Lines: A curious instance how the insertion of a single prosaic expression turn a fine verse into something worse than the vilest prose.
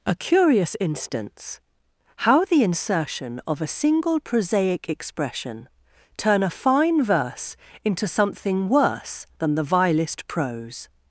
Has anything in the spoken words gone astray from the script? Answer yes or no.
no